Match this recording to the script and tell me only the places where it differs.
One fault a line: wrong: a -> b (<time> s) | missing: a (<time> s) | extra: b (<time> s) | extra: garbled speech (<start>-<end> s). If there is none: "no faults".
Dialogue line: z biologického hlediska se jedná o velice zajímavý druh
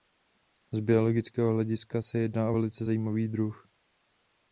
no faults